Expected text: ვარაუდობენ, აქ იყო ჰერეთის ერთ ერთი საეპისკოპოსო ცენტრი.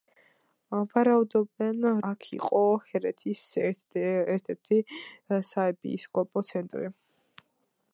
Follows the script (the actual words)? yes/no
yes